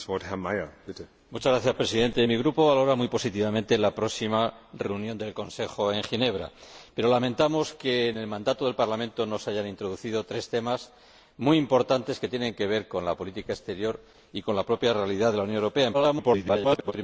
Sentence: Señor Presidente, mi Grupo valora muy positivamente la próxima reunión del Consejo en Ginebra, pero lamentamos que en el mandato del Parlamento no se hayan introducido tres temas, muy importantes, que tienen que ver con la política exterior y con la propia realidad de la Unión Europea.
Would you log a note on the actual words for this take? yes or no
yes